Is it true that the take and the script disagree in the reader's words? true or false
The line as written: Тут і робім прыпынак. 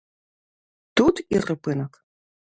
true